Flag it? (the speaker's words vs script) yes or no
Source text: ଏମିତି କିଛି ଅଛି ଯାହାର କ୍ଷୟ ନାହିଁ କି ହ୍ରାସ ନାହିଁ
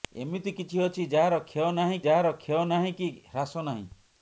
yes